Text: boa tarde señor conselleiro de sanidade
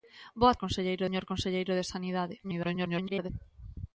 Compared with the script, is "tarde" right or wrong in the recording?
wrong